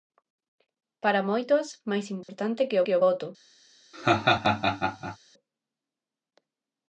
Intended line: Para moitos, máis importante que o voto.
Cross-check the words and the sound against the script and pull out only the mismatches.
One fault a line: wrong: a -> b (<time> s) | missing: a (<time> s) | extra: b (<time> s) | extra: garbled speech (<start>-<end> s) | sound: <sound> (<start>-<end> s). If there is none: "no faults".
sound: dropout (2.2-2.3 s)
extra: que (2.8 s)
sound: laugh (3.9-5.2 s)